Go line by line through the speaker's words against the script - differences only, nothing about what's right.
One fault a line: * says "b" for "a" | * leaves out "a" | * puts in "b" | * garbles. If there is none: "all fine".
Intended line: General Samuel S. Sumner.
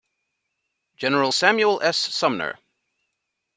all fine